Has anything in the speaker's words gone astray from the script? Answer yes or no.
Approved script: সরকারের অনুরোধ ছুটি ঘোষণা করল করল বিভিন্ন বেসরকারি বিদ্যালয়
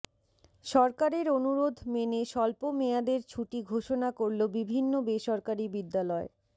yes